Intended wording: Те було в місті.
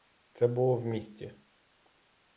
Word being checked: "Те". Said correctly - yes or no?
no